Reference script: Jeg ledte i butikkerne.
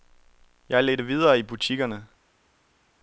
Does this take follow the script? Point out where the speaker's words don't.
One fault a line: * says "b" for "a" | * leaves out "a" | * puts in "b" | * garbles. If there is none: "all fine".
* puts in "videre"